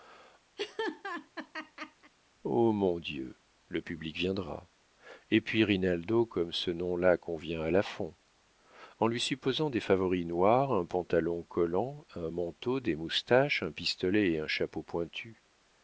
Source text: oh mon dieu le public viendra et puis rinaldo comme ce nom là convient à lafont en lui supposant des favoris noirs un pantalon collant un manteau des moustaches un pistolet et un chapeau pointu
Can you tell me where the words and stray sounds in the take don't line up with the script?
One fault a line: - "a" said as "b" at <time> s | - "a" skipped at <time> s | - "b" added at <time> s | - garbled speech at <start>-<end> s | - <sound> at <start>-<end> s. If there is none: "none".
- laugh at 0.6-2.1 s